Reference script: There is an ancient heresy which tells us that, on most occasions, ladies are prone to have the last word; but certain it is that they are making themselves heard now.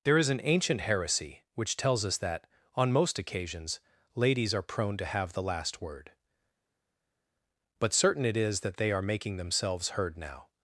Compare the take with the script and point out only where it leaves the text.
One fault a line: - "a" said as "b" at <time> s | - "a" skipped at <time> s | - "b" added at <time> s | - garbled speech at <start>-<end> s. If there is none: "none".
none